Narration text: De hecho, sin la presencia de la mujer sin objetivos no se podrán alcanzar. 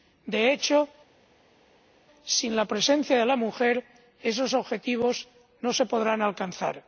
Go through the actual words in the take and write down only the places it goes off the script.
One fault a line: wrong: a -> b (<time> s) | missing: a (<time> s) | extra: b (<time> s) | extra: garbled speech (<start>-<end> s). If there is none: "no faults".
wrong: sin -> esos (4.2 s)